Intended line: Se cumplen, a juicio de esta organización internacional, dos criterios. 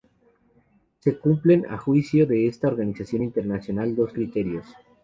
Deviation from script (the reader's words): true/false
false